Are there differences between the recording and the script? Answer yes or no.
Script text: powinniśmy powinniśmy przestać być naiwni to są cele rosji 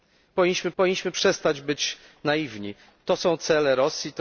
no